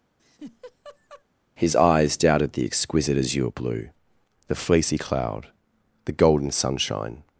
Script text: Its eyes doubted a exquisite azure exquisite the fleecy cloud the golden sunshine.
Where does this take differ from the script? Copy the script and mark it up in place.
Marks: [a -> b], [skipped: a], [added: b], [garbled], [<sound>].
[laugh] [Its -> His] eyes doubted [a -> the] exquisite azure [exquisite -> blue] the fleecy cloud the golden sunshine.